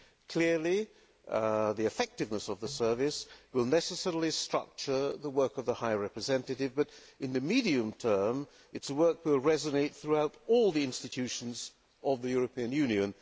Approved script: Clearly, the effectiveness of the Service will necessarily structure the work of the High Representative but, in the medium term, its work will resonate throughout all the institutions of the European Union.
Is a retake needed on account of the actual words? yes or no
no